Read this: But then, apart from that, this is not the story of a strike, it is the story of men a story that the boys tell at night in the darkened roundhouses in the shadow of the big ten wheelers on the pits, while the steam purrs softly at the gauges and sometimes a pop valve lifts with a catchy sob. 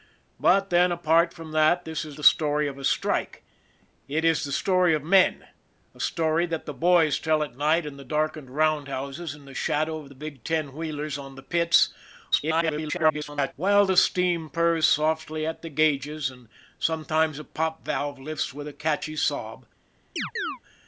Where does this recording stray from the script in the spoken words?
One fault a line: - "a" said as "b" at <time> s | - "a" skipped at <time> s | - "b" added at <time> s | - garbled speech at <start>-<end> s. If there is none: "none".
- "not" skipped at 2.2 s
- garbled speech at 12.3-13.5 s